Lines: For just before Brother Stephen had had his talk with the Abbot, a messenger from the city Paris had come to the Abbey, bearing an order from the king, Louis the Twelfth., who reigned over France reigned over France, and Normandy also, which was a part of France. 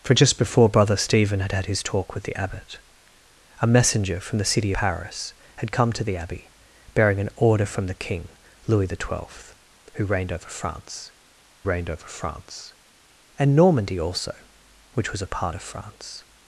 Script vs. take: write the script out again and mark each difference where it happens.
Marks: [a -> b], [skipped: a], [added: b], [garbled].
For just before Brother Stephen had had his talk with the Abbot, a messenger from the city Paris had come to the Abbey, bearing an order from the king, Louis the Twelfth., who reigned over France reigned over France, and Normandy also, which was a part of France.